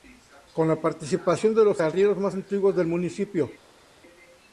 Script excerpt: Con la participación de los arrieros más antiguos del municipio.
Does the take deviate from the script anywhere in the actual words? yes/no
no